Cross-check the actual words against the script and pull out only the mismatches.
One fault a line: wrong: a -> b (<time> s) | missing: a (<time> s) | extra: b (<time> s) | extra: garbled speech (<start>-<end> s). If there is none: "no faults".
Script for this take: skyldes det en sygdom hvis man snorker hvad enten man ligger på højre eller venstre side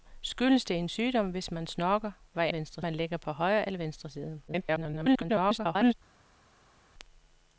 wrong: enten -> venstre (2.5 s)
extra: garbled speech (4.5-5.9 s)